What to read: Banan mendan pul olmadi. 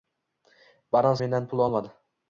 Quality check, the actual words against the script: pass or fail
pass